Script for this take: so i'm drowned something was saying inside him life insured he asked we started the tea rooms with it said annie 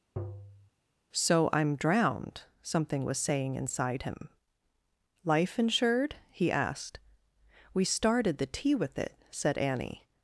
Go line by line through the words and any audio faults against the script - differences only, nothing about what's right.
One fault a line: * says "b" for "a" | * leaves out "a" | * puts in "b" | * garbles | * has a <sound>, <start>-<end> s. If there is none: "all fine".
* has a tap, 0.2-0.7 s
* leaves out "rooms"